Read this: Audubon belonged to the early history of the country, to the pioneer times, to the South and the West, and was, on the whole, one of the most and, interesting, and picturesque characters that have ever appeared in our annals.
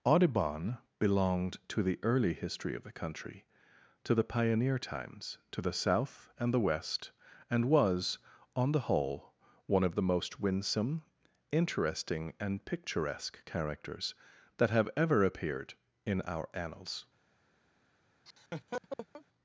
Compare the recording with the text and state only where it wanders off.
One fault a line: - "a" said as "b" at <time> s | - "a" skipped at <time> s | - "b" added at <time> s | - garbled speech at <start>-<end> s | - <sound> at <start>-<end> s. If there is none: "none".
- "and" said as "winsome" at 10.4 s
- laugh at 18.3-19.2 s